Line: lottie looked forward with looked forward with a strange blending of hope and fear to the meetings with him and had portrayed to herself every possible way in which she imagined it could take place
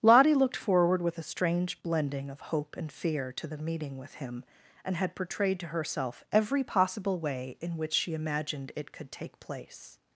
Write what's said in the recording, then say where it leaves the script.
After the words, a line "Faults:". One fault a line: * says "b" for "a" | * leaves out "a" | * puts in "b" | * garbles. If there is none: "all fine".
lottie looked forward with a strange blending of hope and fear to the meeting with him and had portrayed to herself every possible way in which she imagined it could take place
Faults:
* leaves out "looked forward with"
* says "meeting" for "meetings"